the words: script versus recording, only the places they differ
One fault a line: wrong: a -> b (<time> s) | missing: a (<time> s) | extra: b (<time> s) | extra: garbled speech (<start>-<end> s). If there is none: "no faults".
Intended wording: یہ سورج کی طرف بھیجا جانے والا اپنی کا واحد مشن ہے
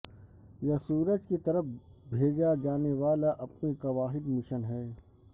no faults